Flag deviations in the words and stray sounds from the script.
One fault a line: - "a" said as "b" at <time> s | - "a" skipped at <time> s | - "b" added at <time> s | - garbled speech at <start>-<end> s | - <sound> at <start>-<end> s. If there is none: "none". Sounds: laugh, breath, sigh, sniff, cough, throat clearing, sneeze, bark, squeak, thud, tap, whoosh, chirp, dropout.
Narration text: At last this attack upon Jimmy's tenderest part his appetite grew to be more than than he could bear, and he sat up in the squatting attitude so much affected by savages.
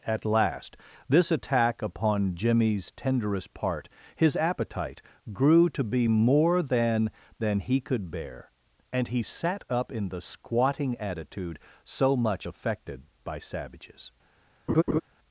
- laugh at 14.7-15.0 s